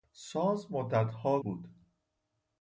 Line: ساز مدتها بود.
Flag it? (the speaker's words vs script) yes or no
no